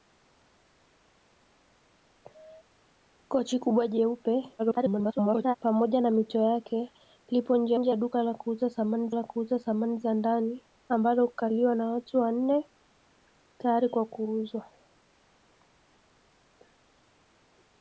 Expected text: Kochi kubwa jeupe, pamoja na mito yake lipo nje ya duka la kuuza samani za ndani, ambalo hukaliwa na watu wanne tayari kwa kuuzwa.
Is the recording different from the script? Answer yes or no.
yes